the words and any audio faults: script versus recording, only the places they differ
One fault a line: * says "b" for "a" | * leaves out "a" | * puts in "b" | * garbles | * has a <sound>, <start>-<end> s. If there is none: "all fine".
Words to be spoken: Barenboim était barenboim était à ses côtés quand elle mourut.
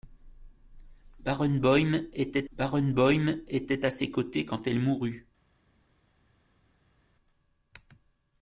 all fine